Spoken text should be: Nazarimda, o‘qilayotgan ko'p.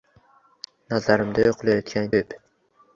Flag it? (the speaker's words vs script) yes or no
no